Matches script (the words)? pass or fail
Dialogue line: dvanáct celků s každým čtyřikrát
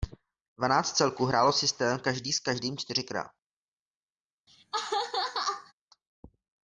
fail